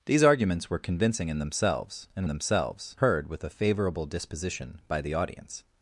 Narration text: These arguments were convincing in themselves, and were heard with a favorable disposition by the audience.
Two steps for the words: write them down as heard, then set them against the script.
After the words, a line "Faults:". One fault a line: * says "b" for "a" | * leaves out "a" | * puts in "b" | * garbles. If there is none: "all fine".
These arguments were convincing in themselves, and themselves heard with a favorable disposition by the audience.
Faults:
* says "themselves" for "were"